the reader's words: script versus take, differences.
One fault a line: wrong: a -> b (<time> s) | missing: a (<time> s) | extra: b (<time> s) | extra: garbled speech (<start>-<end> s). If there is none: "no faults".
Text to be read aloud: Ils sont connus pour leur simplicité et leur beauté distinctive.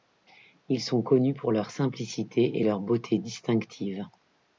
no faults